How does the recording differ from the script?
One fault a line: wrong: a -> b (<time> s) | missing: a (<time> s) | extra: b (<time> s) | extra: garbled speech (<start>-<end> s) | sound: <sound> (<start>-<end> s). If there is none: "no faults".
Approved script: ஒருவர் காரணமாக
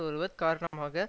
sound: dropout (0.7-0.7 s)